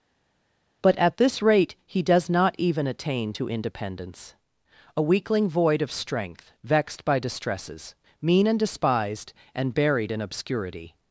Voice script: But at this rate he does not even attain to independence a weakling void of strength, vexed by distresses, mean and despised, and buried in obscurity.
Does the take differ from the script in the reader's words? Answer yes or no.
no